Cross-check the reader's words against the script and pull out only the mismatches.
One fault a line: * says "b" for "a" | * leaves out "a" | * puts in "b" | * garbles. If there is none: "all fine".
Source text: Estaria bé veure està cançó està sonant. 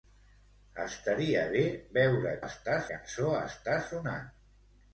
all fine